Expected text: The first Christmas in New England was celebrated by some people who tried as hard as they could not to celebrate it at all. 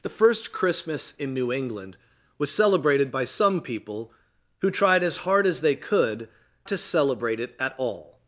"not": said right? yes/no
no